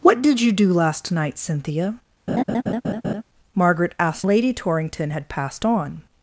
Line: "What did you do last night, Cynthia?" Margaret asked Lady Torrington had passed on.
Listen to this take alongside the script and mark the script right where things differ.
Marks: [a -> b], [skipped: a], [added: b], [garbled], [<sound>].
"What did you do last night, Cynthia?" [laugh] Margaret asked Lady Torrington had passed on.